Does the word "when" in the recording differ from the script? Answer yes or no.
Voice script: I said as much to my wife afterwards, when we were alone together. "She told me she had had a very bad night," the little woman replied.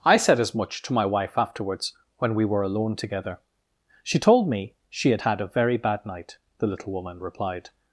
no